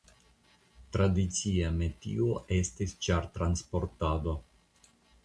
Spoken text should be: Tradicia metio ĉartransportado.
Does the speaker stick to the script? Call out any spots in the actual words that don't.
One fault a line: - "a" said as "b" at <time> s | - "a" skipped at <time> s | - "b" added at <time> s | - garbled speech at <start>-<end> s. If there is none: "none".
- "estis" added at 2.6 s